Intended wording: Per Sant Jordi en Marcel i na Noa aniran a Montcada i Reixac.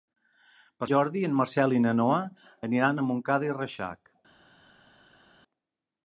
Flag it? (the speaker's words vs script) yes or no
yes